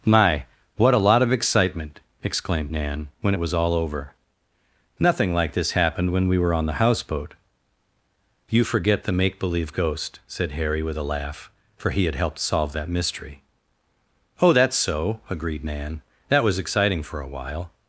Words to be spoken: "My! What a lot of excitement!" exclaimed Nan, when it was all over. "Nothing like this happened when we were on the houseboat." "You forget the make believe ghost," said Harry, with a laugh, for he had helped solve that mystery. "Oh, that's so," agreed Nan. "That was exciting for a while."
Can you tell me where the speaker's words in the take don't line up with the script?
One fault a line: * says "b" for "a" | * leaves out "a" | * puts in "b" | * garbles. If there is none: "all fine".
all fine